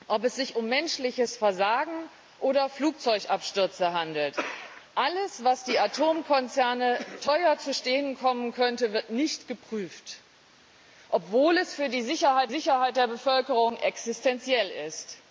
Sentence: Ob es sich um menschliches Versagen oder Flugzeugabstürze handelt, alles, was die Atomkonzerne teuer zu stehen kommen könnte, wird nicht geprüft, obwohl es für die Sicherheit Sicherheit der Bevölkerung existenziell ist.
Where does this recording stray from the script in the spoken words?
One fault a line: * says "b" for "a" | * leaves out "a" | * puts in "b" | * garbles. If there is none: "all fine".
all fine